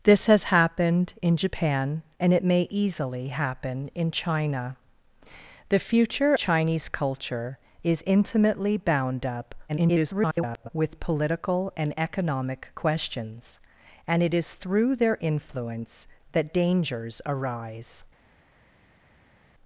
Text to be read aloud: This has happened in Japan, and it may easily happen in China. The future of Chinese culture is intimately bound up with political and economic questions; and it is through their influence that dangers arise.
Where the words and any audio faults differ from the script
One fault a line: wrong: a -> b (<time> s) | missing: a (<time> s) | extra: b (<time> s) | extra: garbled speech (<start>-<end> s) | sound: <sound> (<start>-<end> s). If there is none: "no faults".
missing: of (6.3 s)
extra: garbled speech (9.7-10.7 s)